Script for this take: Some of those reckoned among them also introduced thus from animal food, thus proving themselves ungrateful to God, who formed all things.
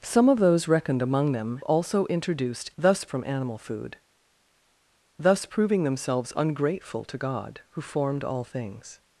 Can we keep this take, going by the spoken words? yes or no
yes